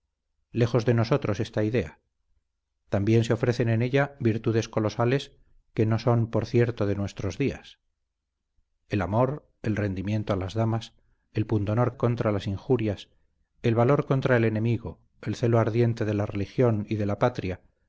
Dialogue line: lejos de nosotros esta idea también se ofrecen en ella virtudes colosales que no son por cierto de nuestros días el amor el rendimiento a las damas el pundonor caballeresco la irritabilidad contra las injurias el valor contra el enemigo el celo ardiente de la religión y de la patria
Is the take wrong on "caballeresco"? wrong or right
wrong